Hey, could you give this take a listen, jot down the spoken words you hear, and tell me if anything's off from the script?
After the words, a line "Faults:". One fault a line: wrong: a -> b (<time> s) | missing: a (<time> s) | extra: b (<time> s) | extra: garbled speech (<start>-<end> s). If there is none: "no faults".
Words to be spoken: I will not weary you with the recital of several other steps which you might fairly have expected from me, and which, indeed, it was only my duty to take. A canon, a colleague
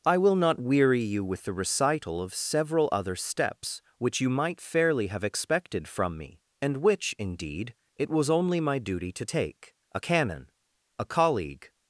I will not weary you with the recital of several other steps which you might fairly have expected from me, and which, indeed, it was only my duty to take. A canon, a colleague
Faults:
no faults